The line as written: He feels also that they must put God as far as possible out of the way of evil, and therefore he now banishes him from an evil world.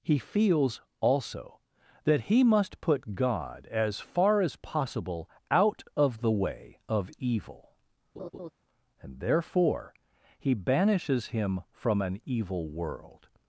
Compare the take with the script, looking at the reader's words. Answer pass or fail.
fail